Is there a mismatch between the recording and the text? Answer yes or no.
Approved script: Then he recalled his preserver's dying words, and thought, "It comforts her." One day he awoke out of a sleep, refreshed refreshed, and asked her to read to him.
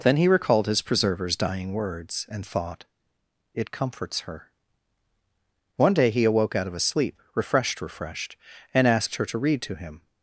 no